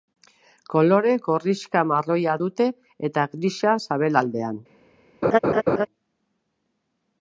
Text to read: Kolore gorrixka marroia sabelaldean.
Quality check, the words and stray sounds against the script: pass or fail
fail